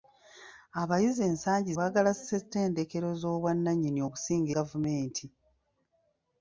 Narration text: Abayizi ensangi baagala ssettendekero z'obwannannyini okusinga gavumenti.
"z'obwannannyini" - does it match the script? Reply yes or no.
yes